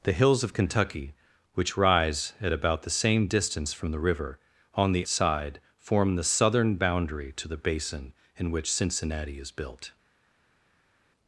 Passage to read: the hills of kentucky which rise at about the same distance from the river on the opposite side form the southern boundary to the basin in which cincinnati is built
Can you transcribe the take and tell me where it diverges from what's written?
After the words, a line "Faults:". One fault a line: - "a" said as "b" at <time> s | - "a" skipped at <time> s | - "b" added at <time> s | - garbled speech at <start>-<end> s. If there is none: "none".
the hills of kentucky which rise at about the same distance from the river on the side form the southern boundary to the basin in which cincinnati is built
Faults:
- "opposite" skipped at 5.1 s